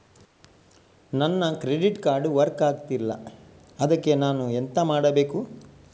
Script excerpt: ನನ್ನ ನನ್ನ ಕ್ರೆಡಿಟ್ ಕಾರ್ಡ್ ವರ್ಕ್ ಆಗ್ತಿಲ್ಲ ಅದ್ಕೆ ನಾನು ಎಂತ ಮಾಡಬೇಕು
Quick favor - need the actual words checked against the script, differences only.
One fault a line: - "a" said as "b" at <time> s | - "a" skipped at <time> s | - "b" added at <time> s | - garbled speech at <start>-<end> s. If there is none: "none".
- "ನನ್ನ" skipped at 1.5 s